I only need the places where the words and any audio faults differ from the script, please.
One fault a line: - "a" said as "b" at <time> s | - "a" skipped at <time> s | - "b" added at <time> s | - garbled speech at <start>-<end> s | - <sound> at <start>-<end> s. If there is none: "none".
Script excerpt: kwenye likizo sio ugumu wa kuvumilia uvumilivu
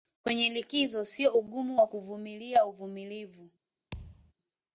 - thud at 3.9-4.3 s